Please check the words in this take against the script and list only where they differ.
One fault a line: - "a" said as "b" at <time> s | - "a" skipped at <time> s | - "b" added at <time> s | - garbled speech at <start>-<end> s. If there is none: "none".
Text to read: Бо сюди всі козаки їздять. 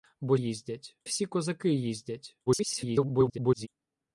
- "сюди" said as "їздять" at 0.3 s
- garbled speech at 2.5-3.7 s